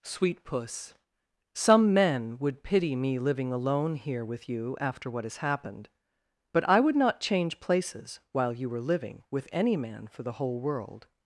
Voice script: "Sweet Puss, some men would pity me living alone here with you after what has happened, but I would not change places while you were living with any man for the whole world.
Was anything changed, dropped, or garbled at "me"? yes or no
no